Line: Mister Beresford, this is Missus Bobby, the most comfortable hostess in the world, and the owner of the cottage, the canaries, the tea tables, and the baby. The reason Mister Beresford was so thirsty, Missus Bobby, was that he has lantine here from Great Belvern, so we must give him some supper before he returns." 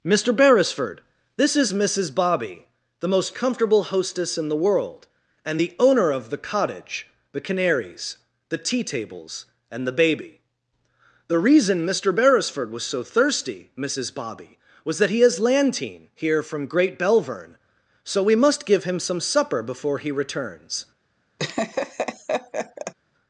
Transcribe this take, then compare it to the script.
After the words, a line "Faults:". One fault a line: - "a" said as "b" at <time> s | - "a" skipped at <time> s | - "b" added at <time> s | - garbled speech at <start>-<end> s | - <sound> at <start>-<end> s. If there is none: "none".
Mister Beresford, this is Missus Bobby, the most comfortable hostess in the world, and the owner of the cottage, the canaries, the tea tables, and the baby. The reason Mister Beresford was so thirsty, Missus Bobby, was that he has lantine here from Great Belvern, so we must give him some supper before he returns."
Faults:
- laugh at 21.4-22.9 s